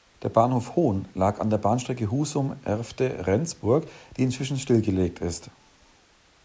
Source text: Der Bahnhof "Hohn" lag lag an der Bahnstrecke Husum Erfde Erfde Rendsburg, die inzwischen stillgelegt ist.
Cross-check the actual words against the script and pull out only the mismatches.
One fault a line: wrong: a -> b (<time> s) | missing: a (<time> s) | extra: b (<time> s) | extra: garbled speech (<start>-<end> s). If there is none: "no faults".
missing: lag (1.4 s)
missing: Erfde (3.3 s)